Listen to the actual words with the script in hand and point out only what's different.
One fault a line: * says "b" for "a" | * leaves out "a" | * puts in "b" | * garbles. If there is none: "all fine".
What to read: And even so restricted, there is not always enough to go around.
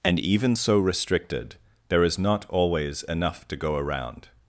all fine